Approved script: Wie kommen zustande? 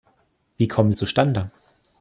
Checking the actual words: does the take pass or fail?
pass